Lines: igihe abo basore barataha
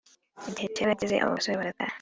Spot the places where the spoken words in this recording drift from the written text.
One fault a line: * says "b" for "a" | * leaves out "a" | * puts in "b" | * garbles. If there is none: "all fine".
* puts in "cyarageze"